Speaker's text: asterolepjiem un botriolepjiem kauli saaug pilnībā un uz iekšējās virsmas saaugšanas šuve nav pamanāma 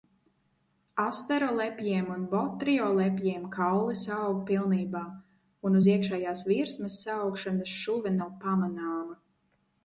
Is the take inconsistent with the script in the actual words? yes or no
no